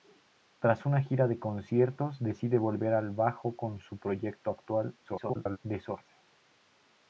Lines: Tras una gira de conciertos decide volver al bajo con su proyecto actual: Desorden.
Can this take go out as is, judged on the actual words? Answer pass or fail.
fail